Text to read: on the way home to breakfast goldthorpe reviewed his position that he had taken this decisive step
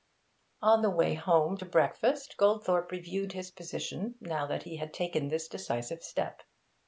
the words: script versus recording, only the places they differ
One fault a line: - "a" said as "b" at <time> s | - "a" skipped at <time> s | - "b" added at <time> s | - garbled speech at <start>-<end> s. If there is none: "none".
- "now" added at 4.2 s